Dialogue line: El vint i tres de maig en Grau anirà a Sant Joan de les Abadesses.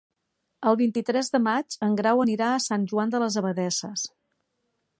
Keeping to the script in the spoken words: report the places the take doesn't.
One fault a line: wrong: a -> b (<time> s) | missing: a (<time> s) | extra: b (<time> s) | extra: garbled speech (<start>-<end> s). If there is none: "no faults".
no faults